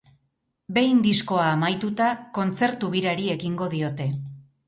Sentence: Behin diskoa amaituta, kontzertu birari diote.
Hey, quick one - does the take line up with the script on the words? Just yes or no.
no